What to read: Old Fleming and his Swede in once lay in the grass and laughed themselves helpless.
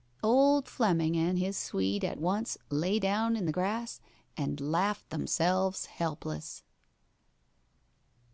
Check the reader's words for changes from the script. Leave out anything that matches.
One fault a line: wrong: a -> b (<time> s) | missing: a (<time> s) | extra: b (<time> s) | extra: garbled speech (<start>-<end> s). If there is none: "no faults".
wrong: in -> at (2.0 s)
extra: down (3.0 s)